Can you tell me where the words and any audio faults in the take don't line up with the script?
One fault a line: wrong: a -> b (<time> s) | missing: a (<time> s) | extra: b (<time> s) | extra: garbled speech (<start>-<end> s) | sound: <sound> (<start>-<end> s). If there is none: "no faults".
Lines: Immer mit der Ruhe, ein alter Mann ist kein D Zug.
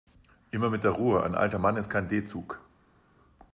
no faults